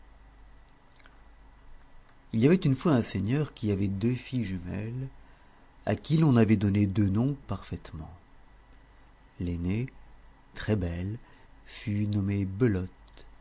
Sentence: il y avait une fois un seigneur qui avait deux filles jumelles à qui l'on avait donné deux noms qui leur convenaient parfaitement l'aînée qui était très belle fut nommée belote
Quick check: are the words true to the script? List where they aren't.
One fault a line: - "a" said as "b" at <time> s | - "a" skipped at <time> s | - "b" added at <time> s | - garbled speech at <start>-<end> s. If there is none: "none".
- "qui leur convenaient" skipped at 7.4 s
- "qui était" skipped at 9.9 s